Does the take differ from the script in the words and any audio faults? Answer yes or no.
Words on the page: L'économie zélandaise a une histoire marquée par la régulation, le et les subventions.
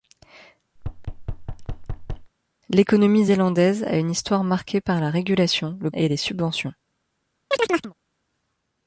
yes